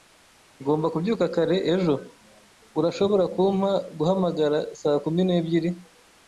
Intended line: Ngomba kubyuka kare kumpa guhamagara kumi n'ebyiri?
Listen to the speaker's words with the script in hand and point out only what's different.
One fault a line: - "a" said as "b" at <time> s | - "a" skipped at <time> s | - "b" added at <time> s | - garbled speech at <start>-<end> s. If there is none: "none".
- "ejo Urashobora" added at 1.7 s
- "saa" added at 4.8 s